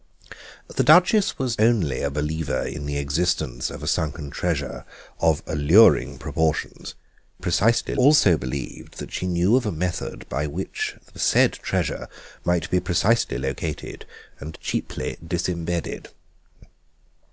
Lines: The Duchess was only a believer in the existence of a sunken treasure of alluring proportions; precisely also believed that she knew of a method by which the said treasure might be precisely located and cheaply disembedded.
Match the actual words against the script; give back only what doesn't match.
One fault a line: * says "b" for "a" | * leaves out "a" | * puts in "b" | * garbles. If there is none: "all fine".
all fine